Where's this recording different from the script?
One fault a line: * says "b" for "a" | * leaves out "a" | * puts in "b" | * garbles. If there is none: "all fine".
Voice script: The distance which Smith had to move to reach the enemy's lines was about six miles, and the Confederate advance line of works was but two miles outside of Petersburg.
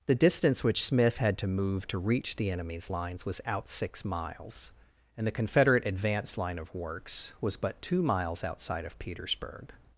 * says "out" for "about"